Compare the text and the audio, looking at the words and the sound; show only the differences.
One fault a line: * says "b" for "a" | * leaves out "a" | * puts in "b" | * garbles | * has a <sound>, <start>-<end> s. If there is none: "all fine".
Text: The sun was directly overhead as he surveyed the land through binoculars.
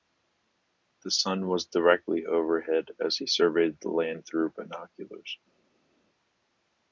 all fine